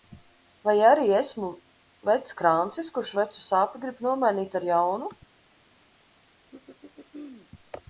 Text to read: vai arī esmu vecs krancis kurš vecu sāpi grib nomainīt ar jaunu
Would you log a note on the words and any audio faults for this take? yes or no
yes